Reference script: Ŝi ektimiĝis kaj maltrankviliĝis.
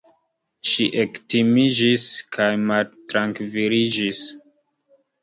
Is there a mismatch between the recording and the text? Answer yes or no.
no